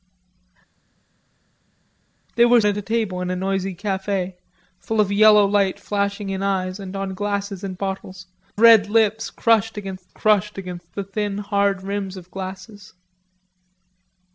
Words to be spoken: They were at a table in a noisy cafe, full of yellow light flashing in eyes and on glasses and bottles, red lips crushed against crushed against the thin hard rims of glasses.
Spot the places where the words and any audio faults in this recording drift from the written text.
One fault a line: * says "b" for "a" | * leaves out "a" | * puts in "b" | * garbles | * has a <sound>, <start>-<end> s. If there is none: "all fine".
all fine